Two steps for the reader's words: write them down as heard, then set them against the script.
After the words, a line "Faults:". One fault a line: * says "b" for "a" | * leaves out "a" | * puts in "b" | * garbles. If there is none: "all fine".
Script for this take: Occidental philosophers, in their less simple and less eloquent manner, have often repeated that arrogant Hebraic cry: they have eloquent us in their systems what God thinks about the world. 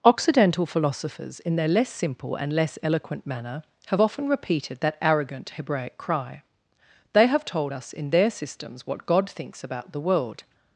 Occidental philosophers, in their less simple and less eloquent manner, have often repeated that arrogant Hebraic cry: they have told us in their systems what God thinks about the world.
Faults:
* says "told" for "eloquent"